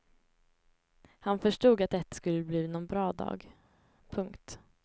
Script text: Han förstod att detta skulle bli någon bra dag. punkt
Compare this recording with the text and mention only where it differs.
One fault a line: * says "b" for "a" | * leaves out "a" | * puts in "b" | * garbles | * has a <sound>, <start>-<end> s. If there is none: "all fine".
all fine